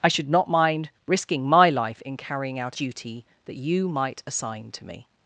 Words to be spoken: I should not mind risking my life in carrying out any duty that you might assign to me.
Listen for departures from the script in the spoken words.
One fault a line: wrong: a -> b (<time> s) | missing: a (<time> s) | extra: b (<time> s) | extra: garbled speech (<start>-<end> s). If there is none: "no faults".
missing: any (2.8 s)